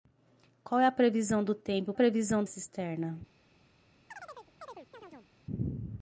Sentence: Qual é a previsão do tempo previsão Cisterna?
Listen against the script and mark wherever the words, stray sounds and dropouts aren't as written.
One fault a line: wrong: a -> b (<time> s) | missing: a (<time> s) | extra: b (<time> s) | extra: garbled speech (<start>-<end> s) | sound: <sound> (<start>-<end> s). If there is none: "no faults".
sound: chirp (4.1-5.3 s)